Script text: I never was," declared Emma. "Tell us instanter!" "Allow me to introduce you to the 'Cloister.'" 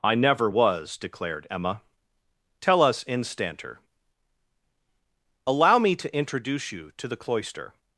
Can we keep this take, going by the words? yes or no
yes